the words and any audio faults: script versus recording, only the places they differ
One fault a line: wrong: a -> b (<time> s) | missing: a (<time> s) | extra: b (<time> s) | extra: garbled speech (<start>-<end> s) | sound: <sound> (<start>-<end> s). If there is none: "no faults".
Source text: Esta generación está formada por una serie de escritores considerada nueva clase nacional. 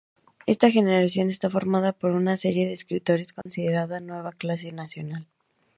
sound: dropout (3.4-3.5 s)